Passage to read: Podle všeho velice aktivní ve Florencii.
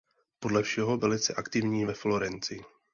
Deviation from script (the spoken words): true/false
false